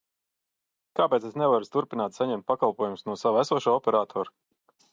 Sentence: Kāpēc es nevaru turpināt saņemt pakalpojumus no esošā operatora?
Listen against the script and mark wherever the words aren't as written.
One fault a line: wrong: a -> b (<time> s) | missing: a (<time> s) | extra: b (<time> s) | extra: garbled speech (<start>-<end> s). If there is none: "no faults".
extra: sava (3.3 s)